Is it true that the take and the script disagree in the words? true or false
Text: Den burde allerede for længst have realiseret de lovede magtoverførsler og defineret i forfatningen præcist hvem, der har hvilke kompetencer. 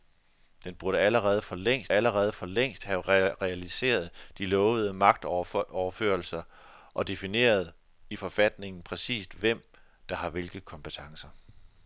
true